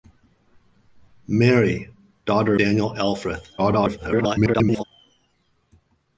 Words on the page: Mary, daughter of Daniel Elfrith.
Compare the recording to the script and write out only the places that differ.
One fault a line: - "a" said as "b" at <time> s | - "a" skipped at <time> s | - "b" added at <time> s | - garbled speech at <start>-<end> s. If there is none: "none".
- "of" skipped at 2.5 s
- garbled speech at 3.6-4.8 s